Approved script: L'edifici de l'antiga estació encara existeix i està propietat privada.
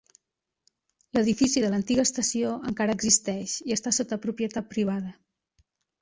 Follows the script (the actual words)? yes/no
no